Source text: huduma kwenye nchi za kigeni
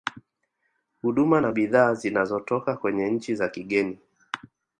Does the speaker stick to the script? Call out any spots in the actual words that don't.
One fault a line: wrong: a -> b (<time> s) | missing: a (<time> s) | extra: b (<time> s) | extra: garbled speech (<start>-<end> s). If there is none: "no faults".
extra: na bidhaa zinazotoka (1.4 s)